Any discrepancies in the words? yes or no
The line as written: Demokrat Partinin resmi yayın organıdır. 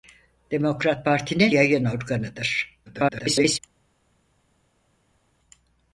yes